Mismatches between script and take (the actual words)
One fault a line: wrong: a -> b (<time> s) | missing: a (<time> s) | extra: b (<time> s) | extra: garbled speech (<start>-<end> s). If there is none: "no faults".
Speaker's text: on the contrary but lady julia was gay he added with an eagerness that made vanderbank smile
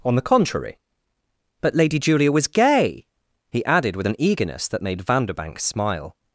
no faults